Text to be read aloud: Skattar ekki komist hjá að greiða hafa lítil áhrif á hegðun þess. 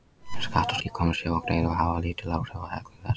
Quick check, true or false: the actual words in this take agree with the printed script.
true